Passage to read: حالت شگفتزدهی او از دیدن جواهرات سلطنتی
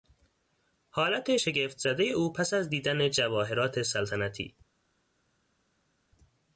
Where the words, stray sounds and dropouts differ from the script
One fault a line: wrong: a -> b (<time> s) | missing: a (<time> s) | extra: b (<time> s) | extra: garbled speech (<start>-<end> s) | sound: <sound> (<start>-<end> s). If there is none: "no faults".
extra: پس (2.3 s)